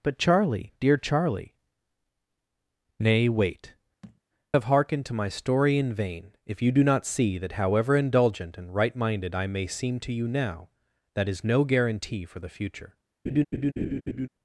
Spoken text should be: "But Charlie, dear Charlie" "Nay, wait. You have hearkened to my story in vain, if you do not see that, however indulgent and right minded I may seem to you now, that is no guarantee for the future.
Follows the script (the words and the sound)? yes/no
no